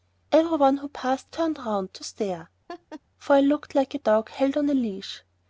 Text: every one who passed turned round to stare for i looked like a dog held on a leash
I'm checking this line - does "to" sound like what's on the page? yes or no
yes